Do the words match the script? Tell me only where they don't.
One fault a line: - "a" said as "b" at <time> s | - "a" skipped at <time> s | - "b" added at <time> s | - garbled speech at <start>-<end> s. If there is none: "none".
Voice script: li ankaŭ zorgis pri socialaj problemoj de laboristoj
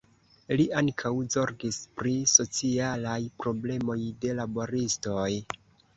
none